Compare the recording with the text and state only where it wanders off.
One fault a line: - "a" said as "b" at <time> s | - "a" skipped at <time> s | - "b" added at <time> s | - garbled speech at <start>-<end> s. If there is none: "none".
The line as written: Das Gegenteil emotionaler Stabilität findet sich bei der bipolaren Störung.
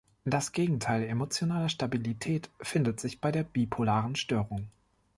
none